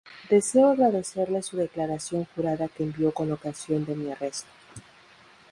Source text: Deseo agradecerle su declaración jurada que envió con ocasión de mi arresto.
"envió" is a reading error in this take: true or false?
false